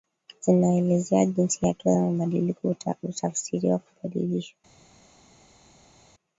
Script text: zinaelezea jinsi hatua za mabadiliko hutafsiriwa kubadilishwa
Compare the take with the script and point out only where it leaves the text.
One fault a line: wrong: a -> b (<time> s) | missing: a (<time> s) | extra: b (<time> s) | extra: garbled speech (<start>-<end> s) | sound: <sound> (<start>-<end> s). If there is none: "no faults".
no faults